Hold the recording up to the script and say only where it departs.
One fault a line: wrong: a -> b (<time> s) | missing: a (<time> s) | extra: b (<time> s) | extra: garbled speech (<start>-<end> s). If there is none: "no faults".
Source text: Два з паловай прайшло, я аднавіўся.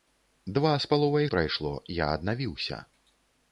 no faults